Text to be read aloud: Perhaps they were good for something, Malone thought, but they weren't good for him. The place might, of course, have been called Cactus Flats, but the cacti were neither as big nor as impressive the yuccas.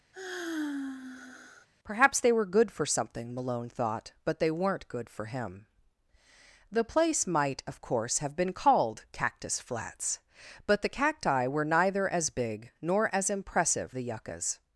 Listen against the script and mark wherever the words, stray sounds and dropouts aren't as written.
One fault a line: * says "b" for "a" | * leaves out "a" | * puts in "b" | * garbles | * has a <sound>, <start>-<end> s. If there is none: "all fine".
* has a sigh, 0.1-1.7 s